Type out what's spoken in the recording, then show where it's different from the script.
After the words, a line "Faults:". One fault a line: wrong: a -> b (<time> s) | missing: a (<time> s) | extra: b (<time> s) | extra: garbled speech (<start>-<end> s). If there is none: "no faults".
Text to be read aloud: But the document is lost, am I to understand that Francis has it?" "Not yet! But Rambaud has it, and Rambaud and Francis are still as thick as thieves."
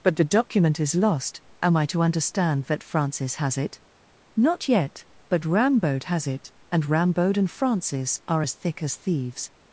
But the document is lost, am I to understand that Francis has it?" "Not yet! But Rambaud has it, and Rambaud and Francis are as thick as thieves."
Faults:
missing: still (8.4 s)